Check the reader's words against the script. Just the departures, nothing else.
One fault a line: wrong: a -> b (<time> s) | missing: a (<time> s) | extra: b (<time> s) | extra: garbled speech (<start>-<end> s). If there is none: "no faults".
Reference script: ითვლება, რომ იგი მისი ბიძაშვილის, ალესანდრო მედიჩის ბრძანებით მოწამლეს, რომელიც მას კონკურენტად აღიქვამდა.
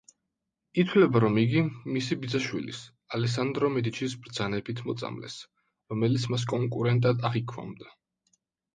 no faults